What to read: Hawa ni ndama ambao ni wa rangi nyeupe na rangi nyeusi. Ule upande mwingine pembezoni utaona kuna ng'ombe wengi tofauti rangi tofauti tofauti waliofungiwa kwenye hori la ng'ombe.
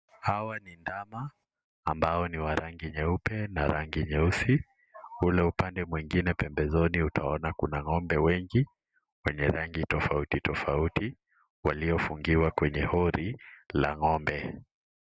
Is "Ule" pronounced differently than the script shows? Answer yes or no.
no